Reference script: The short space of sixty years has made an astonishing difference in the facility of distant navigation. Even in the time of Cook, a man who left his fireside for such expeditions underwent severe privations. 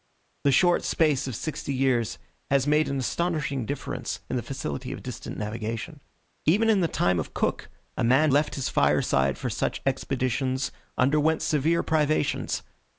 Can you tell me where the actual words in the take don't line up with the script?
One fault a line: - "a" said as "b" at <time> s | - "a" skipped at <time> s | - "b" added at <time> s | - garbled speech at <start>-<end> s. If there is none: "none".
- "who" skipped at 8.3 s